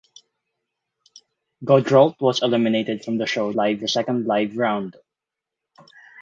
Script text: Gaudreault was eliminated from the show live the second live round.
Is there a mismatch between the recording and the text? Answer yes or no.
no